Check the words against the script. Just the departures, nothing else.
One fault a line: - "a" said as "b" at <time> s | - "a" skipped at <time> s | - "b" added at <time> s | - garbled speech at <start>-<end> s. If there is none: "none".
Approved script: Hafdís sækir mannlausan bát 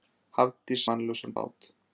- "sækir" skipped at 0.8 s